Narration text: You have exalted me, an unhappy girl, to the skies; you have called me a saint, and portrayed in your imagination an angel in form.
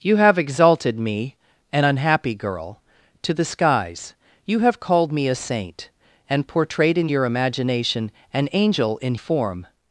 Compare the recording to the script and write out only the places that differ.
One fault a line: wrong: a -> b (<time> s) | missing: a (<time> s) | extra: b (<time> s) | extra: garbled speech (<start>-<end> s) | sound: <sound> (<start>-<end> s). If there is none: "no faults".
no faults